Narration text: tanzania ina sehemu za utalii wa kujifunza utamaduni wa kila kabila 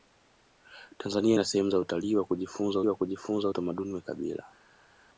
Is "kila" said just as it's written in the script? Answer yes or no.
no